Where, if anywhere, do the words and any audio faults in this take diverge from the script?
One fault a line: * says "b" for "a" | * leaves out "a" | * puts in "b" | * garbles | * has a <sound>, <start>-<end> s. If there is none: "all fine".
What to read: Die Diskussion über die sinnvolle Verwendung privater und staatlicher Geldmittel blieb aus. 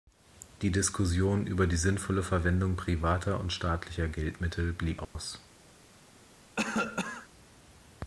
* has a dropout, 5.0-5.2 s
* has a cough, 6.6-7.3 s